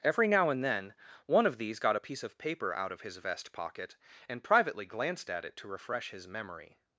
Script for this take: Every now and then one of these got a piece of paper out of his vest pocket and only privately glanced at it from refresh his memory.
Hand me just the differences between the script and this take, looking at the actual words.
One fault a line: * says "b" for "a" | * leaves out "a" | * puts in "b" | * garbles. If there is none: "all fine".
* leaves out "only"
* says "to" for "from"